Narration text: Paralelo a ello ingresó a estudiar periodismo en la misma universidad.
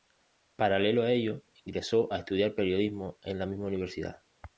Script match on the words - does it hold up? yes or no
yes